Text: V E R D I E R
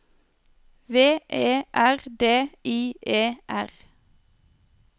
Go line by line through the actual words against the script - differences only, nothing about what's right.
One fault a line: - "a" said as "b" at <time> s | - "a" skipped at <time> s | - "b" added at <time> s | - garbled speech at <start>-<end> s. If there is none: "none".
none